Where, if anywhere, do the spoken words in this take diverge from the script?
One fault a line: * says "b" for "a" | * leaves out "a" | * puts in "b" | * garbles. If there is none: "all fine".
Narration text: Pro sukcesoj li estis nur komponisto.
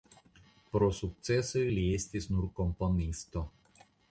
all fine